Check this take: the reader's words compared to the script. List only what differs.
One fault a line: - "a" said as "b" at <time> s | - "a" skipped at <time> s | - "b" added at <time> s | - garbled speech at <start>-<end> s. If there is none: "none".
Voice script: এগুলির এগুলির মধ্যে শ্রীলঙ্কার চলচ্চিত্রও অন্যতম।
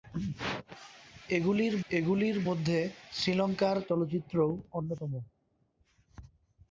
none